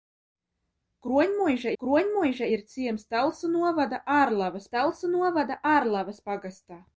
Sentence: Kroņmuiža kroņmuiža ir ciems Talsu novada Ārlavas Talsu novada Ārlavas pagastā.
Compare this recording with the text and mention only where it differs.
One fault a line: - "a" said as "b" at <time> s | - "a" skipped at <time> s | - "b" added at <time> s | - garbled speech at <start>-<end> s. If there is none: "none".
none